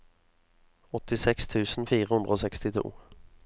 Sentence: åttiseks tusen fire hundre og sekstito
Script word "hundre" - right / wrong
right